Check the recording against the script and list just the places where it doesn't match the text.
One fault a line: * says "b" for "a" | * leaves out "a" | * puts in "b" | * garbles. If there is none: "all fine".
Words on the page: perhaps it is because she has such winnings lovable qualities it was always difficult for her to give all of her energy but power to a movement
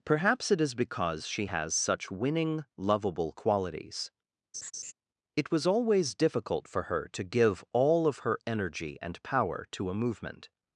* says "winning" for "winnings"
* says "and" for "but"